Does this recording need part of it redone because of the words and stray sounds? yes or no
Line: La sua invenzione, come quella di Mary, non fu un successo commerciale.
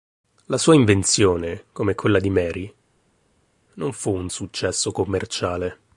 no